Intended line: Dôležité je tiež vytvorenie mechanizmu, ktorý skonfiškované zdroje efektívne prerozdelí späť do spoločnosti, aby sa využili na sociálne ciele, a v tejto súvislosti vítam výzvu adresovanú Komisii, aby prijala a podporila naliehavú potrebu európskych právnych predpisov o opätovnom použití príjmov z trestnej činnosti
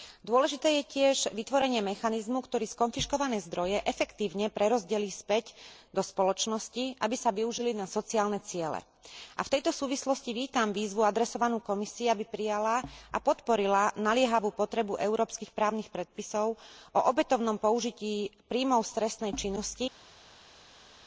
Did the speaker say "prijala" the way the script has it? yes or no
yes